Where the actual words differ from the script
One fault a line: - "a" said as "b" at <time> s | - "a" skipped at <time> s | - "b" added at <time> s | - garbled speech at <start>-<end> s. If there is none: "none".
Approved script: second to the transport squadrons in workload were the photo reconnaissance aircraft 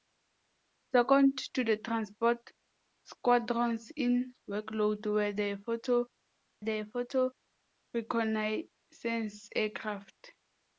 - "the photo" added at 6.6 s